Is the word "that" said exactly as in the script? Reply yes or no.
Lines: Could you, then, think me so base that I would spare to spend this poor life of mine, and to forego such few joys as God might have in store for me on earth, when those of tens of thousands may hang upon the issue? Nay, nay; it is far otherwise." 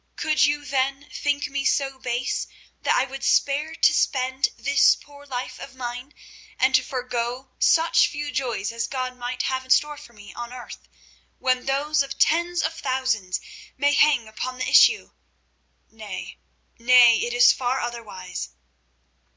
yes